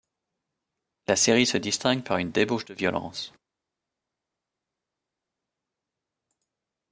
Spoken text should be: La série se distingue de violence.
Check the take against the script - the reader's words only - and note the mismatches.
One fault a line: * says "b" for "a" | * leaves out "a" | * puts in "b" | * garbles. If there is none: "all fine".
* puts in "par une débauche"